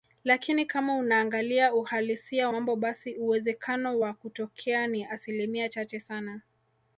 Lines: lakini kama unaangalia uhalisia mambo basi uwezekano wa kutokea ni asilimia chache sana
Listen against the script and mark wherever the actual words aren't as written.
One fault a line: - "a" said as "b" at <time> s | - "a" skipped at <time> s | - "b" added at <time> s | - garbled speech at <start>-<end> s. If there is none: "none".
none